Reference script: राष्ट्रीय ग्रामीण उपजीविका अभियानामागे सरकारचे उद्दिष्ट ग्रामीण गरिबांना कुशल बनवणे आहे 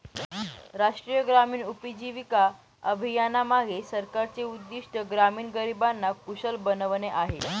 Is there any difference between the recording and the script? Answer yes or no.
no